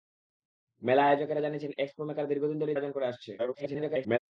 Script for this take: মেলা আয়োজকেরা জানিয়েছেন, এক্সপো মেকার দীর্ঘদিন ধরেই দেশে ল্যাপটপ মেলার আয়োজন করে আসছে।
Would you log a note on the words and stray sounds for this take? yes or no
yes